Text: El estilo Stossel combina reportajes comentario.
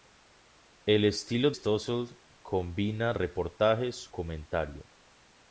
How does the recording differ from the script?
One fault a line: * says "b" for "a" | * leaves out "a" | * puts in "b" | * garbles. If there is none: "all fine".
all fine